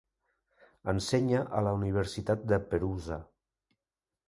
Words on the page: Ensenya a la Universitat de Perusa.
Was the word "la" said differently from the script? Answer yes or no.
no